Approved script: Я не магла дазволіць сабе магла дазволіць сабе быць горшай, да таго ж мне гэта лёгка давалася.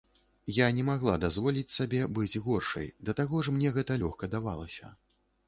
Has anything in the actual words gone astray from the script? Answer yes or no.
yes